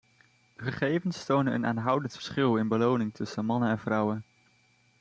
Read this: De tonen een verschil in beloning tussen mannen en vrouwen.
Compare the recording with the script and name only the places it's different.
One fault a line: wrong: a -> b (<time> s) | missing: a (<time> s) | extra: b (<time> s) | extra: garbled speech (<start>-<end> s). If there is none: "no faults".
extra: gegevens (0.6 s)
extra: aanhoudend (1.6 s)